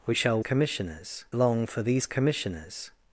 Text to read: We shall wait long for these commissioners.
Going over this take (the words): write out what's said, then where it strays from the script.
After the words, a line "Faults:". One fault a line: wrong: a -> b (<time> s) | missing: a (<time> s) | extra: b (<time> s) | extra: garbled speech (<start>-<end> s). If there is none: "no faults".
We shall commissioners long for these commissioners.
Faults:
wrong: wait -> commissioners (0.4 s)